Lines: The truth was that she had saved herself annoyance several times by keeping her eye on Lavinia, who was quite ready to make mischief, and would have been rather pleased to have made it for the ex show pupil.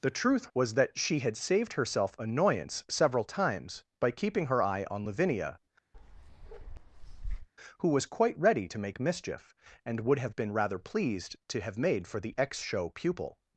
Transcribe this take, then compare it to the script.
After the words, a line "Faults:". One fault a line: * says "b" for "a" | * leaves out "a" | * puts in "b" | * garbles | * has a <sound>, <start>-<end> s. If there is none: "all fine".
The truth was that she had saved herself annoyance several times by keeping her eye on Lavinia, who was quite ready to make mischief, and would have been rather pleased to have made for the ex show pupil.
Faults:
* has a bark, 5.9-7.5 s
* leaves out "it"